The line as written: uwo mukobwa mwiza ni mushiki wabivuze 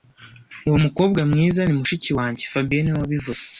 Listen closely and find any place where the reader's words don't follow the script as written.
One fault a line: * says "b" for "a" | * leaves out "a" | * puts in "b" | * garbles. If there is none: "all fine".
* puts in "wanjye fabien niwe"